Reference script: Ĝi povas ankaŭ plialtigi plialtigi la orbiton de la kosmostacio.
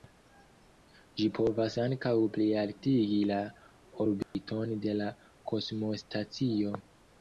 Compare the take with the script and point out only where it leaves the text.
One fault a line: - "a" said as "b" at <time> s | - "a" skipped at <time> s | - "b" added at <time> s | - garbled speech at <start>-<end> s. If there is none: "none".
- "plialtigi" skipped at 3.2 s